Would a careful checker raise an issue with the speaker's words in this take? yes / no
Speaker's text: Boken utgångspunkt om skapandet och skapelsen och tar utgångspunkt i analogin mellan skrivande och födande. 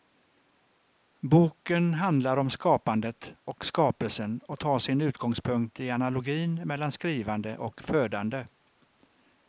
yes